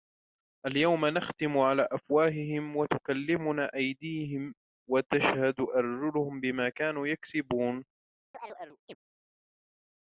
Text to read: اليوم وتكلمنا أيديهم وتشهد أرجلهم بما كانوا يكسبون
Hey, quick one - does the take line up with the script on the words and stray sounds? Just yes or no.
no